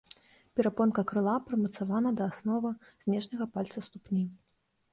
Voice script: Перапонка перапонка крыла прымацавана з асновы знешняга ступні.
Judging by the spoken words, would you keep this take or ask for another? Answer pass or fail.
fail